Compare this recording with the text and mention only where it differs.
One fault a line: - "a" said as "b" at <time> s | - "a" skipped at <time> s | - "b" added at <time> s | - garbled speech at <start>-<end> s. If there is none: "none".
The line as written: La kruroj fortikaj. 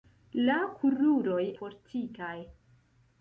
none